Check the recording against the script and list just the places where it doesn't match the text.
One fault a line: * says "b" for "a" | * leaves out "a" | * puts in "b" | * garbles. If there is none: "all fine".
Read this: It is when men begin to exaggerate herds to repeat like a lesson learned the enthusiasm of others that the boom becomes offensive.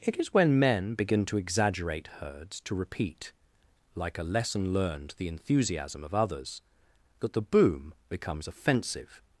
all fine